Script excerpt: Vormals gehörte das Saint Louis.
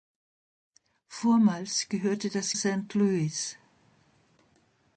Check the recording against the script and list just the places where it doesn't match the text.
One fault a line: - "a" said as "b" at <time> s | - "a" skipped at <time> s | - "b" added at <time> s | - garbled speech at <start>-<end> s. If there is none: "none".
none